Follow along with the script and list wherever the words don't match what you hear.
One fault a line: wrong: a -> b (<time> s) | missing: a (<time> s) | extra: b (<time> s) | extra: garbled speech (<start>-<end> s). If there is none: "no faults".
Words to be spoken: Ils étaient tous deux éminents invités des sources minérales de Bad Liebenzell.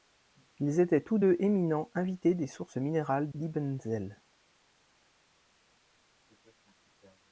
missing: de Bad (3.3 s)